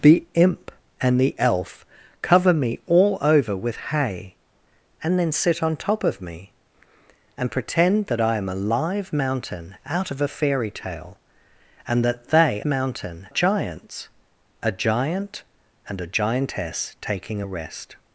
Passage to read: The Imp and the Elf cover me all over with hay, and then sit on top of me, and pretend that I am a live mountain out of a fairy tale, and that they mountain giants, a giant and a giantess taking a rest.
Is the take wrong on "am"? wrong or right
right